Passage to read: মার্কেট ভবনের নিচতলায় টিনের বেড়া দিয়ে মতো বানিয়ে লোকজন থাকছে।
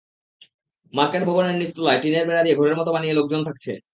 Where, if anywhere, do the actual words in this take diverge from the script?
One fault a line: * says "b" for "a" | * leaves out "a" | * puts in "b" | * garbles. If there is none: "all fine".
* puts in "ঘরের"